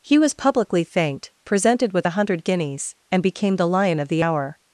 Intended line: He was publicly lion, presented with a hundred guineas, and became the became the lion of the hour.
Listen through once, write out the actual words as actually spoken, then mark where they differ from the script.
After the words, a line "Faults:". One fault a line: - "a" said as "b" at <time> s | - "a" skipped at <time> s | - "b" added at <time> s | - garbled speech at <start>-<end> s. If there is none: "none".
He was publicly thanked, presented with a hundred guineas, and became the lion of the hour.
Faults:
- "lion" said as "thanked" at 0.8 s
- "became the" skipped at 3.7 s